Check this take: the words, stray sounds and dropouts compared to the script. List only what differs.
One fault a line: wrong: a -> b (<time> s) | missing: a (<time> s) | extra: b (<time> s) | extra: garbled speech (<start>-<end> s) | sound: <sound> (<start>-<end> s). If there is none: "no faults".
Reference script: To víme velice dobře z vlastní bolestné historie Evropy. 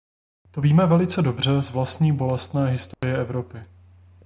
sound: dropout (2.9-3.0 s)